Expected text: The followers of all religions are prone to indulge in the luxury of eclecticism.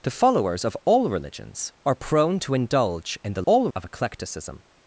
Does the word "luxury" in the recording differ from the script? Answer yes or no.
yes